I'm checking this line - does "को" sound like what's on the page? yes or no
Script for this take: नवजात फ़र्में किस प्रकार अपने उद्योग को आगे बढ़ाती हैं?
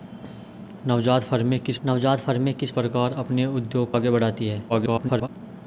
no